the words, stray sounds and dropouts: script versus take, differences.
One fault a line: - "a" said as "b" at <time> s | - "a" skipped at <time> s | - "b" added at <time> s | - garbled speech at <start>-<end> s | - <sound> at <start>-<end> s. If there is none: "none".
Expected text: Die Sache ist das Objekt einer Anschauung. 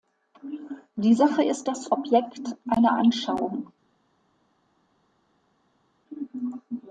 none